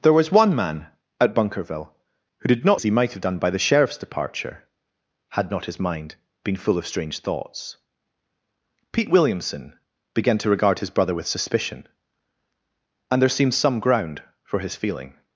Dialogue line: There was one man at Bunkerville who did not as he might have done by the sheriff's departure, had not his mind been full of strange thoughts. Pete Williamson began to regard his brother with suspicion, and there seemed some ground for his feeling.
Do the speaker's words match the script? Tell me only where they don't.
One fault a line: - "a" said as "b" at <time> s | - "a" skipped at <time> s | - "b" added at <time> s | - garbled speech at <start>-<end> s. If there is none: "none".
none